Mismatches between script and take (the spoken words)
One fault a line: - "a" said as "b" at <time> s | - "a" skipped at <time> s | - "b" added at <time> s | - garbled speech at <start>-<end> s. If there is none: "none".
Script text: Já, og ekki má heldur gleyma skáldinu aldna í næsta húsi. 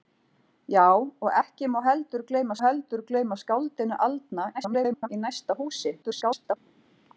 - "heldur gleyma" added at 2.6 s
- garbled speech at 4.5-5.1 s
- garbled speech at 6.0-6.6 s